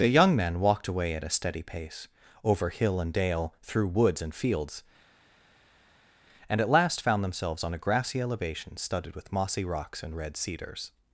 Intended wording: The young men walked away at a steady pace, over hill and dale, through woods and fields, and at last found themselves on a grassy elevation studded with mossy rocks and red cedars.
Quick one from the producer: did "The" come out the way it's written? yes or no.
yes